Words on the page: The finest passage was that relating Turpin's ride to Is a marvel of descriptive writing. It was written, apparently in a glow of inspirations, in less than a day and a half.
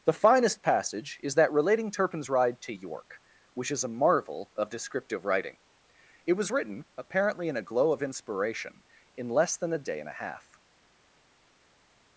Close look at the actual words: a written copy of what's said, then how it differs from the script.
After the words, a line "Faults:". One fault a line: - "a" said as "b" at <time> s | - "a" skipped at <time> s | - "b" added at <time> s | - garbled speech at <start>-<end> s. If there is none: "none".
The finest passage is that relating Turpin's ride to York, which is a marvel of descriptive writing. It was written, apparently in a glow of inspiration, in less than a day and a half.
Faults:
- "was" said as "is" at 1.2 s
- "York which" added at 2.7 s
- "inspirations" said as "inspiration" at 8.0 s